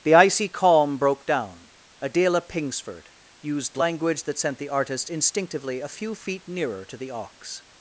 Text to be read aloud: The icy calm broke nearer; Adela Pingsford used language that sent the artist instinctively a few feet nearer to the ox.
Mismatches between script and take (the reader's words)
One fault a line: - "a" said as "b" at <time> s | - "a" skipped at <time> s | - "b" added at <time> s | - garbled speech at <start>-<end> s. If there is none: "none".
- "nearer" said as "down" at 1.3 s